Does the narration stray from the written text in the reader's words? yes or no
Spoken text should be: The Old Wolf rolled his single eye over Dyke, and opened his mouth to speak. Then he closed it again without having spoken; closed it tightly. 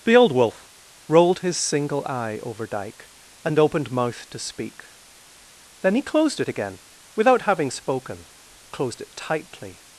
yes